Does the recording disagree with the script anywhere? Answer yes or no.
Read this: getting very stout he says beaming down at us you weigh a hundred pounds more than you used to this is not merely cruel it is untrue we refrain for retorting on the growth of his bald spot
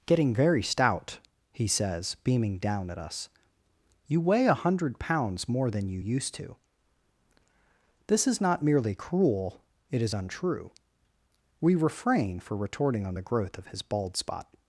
no